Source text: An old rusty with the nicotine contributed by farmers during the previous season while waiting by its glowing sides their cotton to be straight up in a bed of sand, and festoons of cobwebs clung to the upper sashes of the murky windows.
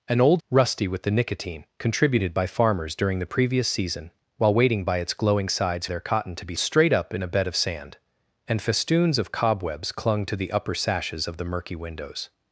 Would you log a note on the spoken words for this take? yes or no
no